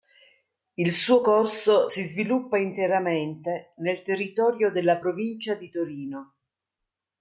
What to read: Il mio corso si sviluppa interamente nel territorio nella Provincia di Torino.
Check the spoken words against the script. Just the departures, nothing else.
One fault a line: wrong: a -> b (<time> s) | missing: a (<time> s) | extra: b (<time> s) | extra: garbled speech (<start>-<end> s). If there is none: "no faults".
wrong: mio -> suo (0.9 s)
wrong: nella -> della (4.7 s)